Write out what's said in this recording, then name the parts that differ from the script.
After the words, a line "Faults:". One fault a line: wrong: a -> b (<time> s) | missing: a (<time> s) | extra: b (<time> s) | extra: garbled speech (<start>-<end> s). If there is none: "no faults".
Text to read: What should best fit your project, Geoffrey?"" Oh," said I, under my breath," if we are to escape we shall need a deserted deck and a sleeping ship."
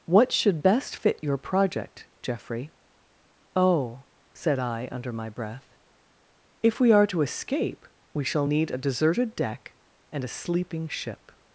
What should best fit your project, Geoffrey?"" Oh," said I, under my breath," if we are to escape we shall need a deserted deck and a sleeping ship."
Faults:
no faults